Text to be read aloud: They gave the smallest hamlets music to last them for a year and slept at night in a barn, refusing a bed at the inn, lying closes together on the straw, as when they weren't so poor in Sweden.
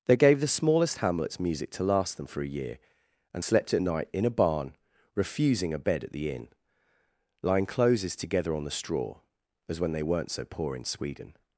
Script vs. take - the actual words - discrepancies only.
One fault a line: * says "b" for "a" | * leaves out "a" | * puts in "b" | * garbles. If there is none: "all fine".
all fine